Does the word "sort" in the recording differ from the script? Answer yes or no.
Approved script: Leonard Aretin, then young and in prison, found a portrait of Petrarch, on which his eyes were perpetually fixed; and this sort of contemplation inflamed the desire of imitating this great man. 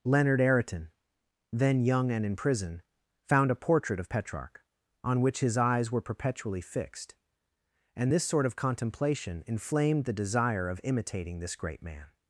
no